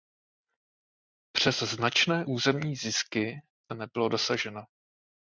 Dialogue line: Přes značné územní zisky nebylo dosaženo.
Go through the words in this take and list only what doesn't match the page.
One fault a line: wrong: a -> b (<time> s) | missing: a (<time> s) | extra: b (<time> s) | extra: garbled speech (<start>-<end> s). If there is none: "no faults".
no faults